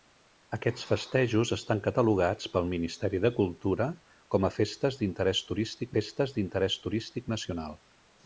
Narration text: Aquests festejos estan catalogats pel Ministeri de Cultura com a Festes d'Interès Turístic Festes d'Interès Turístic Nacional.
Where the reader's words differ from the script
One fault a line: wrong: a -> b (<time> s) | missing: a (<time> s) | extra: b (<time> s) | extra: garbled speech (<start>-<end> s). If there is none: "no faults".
no faults